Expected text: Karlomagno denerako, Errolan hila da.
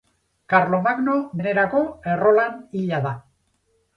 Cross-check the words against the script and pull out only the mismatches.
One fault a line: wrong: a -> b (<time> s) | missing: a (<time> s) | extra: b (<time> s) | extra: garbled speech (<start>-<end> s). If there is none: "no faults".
no faults